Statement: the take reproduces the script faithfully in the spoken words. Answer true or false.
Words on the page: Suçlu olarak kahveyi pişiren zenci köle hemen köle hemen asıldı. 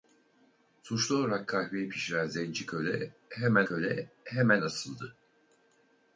true